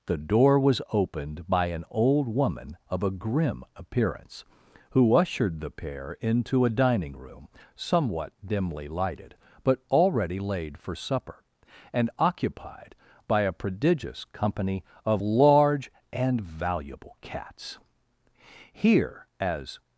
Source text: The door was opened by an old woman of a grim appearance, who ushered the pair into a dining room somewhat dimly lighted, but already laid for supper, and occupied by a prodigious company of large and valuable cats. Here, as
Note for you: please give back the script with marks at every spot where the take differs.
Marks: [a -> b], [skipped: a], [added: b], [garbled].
The door was opened by an old woman of a grim appearance, who ushered the pair into a dining room somewhat dimly lighted, but already laid for supper, and occupied by a prodigious company of large and valuable cats. Here, as